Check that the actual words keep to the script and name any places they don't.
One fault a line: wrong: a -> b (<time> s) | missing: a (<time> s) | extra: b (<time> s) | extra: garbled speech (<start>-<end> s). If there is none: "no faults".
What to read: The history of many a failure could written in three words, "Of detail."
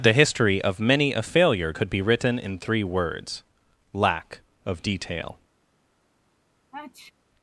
extra: be (1.9 s)
extra: Lack (3.9 s)